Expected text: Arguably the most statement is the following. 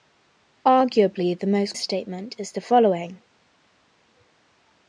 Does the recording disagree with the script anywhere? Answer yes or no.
no